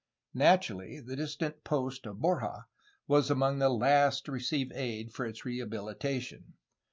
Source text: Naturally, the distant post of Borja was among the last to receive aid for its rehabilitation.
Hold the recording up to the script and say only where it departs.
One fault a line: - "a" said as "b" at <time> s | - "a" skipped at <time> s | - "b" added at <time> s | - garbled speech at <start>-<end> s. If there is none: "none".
none